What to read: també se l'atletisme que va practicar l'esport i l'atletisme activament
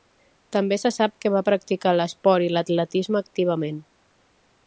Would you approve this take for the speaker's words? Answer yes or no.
no